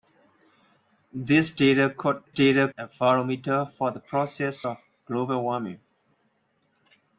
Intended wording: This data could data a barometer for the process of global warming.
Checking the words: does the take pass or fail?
pass